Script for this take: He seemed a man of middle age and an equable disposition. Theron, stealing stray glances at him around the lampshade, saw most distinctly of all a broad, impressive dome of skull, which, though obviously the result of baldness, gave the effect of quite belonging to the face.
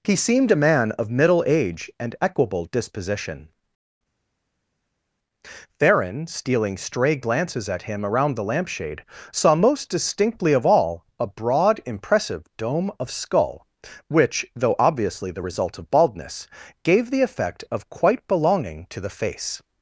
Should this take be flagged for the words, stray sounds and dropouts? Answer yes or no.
yes